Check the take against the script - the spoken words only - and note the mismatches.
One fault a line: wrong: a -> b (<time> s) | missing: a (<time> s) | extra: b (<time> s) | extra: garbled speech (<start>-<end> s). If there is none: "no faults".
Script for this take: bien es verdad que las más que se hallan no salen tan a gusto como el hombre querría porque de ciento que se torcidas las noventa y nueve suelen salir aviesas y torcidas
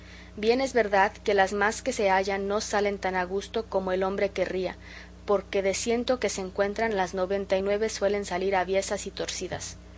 wrong: torcidas -> encuentran (6.4 s)